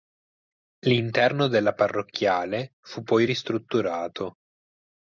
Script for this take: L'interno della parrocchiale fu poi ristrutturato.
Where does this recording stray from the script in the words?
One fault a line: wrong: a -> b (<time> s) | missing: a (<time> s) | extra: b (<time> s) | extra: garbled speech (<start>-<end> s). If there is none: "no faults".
no faults